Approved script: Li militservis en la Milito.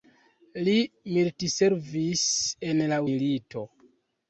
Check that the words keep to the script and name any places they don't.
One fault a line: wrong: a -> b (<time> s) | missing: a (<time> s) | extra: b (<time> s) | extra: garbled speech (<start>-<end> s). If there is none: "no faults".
no faults